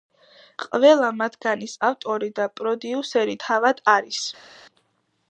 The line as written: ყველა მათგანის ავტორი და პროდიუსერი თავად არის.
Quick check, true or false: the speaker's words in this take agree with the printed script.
true